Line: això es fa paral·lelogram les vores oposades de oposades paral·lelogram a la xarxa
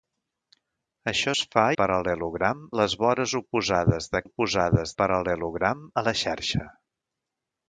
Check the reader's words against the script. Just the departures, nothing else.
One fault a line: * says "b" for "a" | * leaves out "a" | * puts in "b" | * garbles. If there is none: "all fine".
all fine